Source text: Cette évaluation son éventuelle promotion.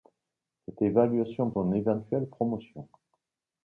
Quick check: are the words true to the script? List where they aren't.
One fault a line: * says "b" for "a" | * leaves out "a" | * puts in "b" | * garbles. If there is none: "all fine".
all fine